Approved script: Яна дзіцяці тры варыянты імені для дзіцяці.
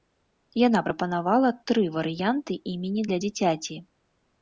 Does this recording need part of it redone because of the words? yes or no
yes